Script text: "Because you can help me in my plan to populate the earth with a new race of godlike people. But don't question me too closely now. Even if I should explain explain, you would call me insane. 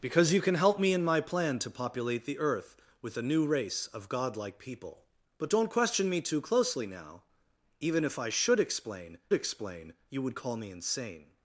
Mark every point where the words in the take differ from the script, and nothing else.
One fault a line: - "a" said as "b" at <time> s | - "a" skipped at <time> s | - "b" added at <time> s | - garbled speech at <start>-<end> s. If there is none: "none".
none